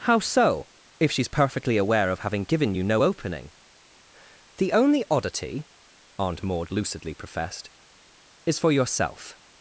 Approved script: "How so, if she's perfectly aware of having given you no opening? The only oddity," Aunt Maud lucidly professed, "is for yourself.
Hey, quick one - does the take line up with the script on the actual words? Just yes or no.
yes